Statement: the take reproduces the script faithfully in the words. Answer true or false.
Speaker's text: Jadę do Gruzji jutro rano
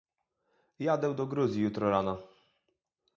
true